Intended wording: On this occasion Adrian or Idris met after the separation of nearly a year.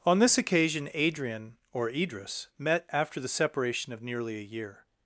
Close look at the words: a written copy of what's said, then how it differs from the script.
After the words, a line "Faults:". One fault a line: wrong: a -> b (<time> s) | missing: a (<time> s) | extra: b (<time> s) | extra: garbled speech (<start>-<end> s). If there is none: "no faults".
On this occasion Adrian or Idris met after the separation of nearly a year.
Faults:
no faults